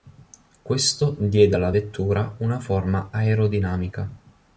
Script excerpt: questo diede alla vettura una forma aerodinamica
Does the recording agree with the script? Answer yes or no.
yes